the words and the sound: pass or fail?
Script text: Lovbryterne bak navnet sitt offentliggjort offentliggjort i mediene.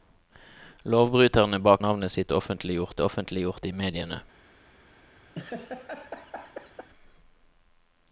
fail